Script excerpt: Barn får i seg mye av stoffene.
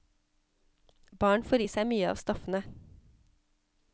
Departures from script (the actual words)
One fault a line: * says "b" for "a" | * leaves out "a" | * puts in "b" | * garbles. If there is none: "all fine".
all fine